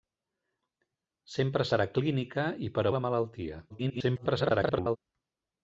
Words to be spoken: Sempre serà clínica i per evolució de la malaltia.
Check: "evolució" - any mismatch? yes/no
yes